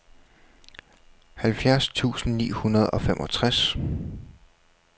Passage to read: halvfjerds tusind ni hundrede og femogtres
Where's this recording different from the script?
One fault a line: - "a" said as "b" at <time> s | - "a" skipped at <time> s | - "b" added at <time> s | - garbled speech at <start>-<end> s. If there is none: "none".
none